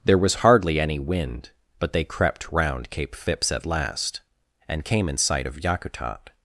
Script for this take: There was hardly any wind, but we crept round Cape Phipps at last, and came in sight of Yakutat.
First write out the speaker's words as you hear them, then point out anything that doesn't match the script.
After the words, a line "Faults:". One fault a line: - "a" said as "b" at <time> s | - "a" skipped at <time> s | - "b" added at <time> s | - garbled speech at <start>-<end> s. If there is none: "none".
There was hardly any wind, but they crept round Cape Phipps at last, and came in sight of Yakutat.
Faults:
- "we" said as "they" at 1.9 s